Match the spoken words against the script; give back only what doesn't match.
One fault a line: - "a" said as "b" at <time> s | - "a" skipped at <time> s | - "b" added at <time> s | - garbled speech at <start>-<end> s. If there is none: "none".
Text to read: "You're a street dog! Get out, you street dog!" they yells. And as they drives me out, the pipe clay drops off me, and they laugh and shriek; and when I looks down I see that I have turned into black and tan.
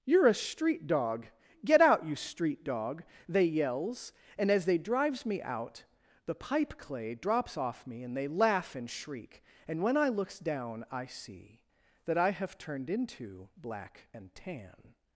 none